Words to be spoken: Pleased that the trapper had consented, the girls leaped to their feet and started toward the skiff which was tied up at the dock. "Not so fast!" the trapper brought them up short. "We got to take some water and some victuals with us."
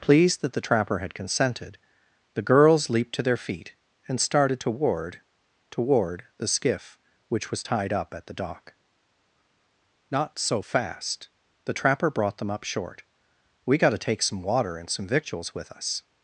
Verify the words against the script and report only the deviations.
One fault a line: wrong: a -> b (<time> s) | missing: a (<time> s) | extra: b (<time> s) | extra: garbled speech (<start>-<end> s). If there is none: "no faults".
extra: toward (5.7 s)